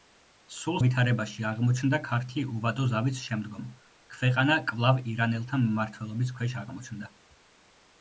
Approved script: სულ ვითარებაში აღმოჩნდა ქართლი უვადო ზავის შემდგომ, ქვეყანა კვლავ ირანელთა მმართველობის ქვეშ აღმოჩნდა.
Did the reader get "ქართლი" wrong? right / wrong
right